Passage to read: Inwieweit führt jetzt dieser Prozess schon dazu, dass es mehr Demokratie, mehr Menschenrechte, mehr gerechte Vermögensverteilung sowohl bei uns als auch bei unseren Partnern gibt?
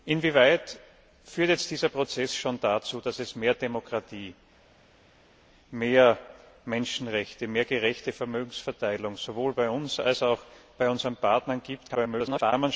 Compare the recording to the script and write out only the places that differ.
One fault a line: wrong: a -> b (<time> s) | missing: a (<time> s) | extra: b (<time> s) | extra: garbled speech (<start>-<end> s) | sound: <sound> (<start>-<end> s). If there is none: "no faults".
extra: garbled speech (11.9-12.5 s)